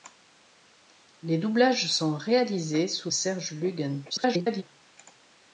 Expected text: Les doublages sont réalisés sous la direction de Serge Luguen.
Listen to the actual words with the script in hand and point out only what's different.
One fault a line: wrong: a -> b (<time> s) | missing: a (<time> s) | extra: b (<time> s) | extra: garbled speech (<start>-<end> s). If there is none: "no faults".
missing: la direction de (3.1 s)
extra: garbled speech (4.1-4.6 s)